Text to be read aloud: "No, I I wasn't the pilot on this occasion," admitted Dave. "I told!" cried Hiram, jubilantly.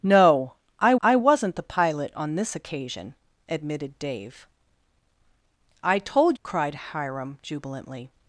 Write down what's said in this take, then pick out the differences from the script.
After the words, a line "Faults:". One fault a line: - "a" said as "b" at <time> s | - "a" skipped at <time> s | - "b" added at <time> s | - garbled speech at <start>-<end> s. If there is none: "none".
"No, I I wasn't the pilot on this occasion," admitted Dave. "I told!" cried Hiram, jubilantly.
Faults:
none